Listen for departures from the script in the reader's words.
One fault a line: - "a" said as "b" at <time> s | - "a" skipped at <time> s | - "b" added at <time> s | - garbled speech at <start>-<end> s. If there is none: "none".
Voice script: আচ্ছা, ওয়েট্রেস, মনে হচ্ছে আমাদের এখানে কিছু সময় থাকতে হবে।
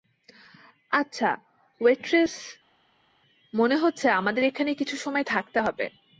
none